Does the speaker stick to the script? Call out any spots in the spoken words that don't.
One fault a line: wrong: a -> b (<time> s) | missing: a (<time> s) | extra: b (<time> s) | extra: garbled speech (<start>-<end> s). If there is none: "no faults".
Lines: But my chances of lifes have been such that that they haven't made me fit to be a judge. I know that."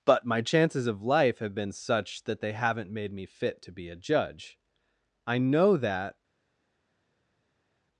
wrong: lifes -> life (1.0 s)
missing: that (2.4 s)